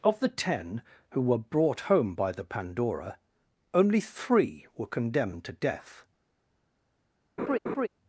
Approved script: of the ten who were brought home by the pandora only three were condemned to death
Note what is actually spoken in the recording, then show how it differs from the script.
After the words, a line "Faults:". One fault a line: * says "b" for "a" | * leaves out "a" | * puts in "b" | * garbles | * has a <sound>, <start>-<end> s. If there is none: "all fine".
of the ten who were brought home by the pandora only three were condemned to death
Faults:
* has a laugh, 7.4-7.9 s